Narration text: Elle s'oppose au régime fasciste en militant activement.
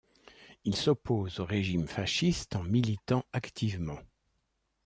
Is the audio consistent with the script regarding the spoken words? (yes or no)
no